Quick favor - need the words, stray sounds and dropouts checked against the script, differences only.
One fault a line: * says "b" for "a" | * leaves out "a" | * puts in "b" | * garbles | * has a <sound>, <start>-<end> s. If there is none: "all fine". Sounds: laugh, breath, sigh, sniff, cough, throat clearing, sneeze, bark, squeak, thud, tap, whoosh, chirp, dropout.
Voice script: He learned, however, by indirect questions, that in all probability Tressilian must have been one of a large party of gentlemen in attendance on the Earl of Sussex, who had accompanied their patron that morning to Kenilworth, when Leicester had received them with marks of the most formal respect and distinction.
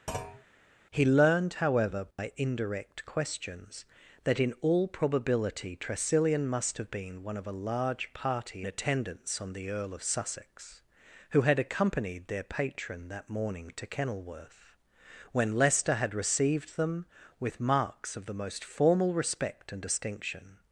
* has a thud, 0.1-0.4 s
* has a dropout, 2.1-2.2 s
* leaves out "of gentlemen in"